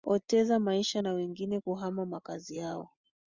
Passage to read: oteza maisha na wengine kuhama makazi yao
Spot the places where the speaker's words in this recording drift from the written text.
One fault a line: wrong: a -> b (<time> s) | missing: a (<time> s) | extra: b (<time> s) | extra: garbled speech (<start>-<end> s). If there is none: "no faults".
no faults